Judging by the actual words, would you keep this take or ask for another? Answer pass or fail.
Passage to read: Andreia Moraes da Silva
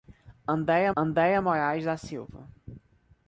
fail